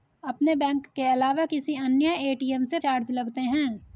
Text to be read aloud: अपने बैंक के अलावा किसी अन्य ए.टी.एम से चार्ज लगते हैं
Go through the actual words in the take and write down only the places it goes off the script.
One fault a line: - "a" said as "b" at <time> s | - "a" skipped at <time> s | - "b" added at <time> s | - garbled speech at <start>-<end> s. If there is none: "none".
none